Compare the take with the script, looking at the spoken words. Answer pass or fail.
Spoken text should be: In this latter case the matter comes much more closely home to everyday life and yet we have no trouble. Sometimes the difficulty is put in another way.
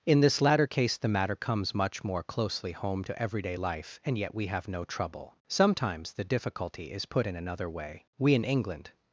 fail